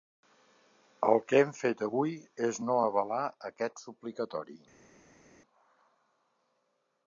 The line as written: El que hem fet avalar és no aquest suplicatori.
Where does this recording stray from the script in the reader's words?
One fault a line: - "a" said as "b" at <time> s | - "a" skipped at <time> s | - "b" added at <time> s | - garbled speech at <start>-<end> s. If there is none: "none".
- "avalar" said as "avui" at 1.9 s
- "avalar" added at 2.8 s